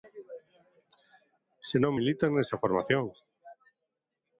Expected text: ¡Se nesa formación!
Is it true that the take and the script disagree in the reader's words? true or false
true